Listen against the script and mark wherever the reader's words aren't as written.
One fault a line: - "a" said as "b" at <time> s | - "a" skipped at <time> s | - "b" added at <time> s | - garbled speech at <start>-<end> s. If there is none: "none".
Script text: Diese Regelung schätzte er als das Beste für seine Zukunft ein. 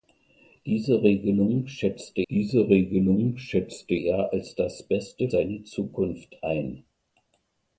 - "diese Regelung schätzte" added at 2.3 s
- "für" skipped at 5.3 s